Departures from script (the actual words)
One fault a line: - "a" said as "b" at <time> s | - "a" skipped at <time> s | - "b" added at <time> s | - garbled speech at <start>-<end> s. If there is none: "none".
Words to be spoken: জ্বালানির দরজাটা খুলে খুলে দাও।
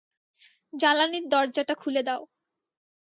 - "খুলে" skipped at 2.0 s